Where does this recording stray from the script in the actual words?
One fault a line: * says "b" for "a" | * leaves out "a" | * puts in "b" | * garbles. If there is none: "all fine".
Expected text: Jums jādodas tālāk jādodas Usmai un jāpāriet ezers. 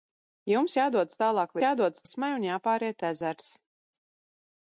all fine